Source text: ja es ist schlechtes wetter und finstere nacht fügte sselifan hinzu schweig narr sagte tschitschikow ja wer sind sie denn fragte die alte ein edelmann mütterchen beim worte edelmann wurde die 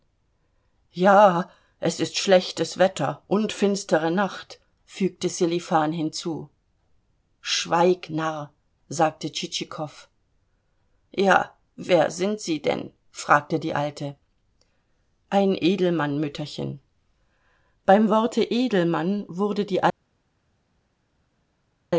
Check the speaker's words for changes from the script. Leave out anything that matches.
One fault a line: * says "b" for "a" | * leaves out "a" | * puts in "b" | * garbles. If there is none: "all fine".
all fine